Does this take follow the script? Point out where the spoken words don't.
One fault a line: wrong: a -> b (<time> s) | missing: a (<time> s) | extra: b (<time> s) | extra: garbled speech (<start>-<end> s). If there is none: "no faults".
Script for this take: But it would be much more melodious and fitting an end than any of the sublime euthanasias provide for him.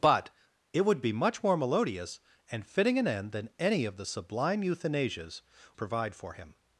no faults